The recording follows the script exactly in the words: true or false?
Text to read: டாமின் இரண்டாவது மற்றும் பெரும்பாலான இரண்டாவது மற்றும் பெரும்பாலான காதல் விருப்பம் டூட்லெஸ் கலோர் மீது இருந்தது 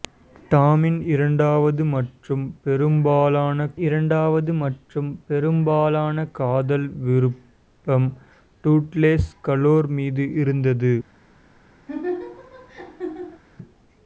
true